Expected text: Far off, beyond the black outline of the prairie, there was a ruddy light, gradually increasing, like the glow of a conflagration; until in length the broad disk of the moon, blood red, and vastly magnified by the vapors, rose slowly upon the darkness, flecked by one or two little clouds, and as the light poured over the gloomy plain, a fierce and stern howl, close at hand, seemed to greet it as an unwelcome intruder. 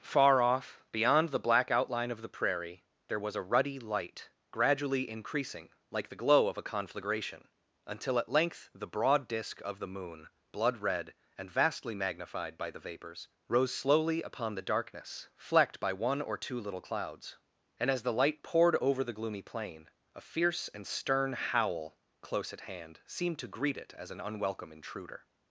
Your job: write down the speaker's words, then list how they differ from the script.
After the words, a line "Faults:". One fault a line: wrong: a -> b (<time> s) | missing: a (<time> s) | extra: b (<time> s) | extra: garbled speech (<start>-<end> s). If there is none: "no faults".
Far off, beyond the black outline of the prairie, there was a ruddy light, gradually increasing, like the glow of a conflagration; until at length the broad disk of the moon, blood red, and vastly magnified by the vapors, rose slowly upon the darkness, flecked by one or two little clouds, and as the light poured over the gloomy plain, a fierce and stern howl, close at hand, seemed to greet it as an unwelcome intruder.
Faults:
wrong: in -> at (8.2 s)